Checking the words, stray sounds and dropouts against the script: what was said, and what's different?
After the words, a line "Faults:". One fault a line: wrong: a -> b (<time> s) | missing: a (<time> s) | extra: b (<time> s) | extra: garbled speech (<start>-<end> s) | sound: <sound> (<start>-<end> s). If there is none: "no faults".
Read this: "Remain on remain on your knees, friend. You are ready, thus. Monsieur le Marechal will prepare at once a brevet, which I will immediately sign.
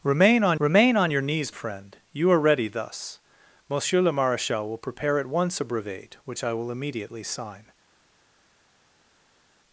"Remain on remain on your knees, friend. You are ready, thus. Monsieur le Marechal will prepare at once a brevet, which I will immediately sign.
Faults:
no faults